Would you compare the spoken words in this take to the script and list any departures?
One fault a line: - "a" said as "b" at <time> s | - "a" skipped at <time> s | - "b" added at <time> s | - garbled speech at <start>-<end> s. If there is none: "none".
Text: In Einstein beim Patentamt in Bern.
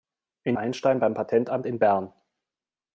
none